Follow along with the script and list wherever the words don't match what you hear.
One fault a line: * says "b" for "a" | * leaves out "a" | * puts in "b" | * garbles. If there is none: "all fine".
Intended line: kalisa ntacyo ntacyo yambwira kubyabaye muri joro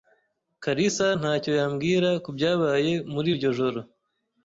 * leaves out "ntacyo"
* puts in "iryo"